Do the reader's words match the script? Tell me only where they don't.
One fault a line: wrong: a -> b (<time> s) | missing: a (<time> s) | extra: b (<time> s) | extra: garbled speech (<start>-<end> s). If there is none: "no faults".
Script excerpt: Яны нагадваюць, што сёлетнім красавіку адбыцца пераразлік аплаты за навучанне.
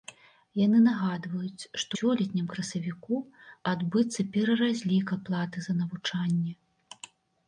no faults